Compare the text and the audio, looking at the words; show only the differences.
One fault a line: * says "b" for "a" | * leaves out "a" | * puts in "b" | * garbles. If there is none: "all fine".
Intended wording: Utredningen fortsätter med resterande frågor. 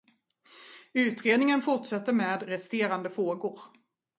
all fine